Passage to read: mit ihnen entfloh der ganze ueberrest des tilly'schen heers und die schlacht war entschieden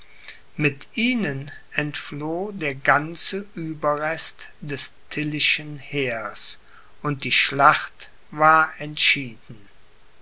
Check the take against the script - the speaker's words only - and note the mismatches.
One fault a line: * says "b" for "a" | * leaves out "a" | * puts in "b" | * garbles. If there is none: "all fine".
all fine